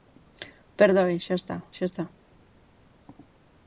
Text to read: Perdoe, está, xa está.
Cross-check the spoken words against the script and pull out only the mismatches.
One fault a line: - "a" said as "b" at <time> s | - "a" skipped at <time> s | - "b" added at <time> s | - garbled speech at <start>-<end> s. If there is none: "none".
- "xa" added at 1.2 s